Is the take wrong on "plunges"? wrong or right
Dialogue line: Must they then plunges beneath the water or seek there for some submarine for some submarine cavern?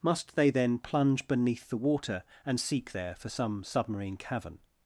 wrong